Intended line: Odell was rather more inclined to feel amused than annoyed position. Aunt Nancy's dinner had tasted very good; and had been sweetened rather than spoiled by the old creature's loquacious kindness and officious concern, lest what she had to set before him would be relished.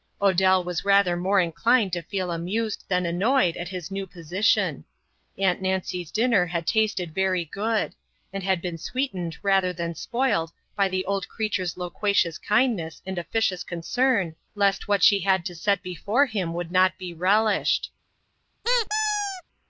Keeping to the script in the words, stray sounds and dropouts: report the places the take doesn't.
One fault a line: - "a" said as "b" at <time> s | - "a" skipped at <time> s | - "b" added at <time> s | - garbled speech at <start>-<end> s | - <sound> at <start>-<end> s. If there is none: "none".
- "at his new" added at 3.5 s
- "not" added at 16.7 s
- squeak at 18.6-19.4 s